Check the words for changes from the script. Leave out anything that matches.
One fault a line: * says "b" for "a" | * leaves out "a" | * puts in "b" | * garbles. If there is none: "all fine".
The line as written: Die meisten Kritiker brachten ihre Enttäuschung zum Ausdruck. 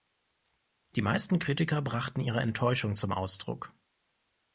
all fine